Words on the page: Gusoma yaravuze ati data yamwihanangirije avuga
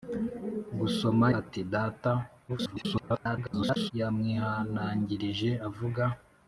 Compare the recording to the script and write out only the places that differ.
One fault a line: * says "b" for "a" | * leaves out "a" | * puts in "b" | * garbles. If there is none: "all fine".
* leaves out "yaravuze"
* garbles